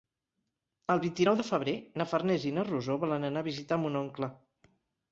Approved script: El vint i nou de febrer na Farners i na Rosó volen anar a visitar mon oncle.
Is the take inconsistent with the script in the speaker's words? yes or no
no